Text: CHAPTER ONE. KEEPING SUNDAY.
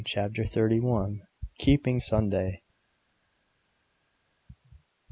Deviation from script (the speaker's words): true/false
true